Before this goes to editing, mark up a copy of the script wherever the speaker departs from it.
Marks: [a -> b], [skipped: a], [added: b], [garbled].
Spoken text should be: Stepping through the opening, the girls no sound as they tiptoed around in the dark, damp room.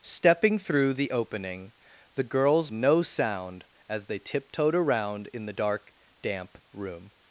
Stepping through the opening, the girls no sound as they tiptoed around in the dark, damp room.